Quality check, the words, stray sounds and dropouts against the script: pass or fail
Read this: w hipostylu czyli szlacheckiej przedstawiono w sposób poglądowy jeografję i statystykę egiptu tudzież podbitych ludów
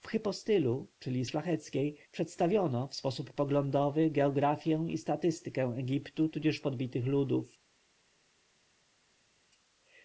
pass